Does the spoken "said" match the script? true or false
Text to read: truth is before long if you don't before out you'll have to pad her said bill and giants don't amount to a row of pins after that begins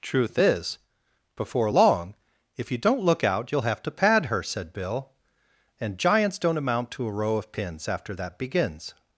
true